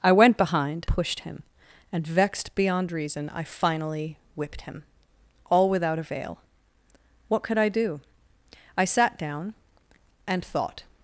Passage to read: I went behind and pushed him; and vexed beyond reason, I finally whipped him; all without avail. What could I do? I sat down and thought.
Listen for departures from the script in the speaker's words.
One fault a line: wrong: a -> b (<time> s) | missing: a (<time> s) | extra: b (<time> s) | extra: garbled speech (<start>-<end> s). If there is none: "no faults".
missing: and (0.9 s)